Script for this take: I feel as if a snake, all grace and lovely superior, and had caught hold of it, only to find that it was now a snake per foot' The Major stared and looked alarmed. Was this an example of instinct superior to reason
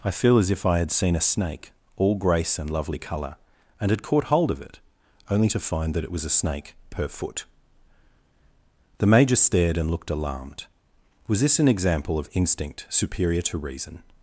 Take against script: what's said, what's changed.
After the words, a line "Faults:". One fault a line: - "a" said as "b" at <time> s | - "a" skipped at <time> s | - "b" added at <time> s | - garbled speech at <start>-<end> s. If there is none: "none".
I feel as if I had seen a snake, all grace and lovely colour, and had caught hold of it, only to find that it was a snake per foot' The Major stared and looked alarmed. Was this an example of instinct superior to reason
Faults:
- "I had seen" added at 0.7 s
- "superior" said as "colour" at 3.0 s
- "now" skipped at 6.2 s